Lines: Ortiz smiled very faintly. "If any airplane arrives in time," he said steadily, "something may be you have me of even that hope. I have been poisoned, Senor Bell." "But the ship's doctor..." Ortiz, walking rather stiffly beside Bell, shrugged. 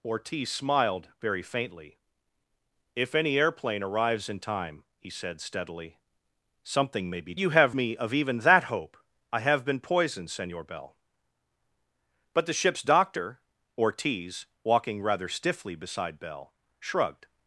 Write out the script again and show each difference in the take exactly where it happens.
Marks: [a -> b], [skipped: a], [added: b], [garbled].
Ortiz smiled very faintly. "If any airplane arrives in time," he said steadily, "something may be you have me of even that hope. I have been poisoned, Senor Bell." "But the ship's doctor..." Ortiz, walking rather stiffly beside Bell, shrugged.